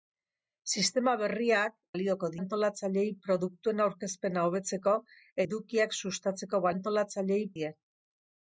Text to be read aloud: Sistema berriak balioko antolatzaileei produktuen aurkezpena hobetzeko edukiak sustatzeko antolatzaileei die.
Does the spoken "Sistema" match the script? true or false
true